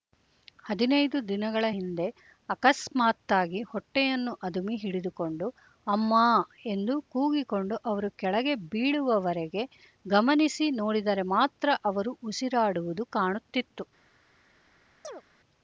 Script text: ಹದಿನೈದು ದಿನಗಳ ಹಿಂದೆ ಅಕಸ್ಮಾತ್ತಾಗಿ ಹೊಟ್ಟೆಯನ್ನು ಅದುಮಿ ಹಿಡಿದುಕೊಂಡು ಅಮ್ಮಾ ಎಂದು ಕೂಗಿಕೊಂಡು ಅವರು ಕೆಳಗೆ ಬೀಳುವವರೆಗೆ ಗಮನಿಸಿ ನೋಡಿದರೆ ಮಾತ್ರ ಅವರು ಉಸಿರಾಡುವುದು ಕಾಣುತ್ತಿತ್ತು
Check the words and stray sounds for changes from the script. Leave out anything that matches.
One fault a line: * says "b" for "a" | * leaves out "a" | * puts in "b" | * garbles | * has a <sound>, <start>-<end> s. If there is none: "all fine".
* has a chirp, 15.0-15.2 s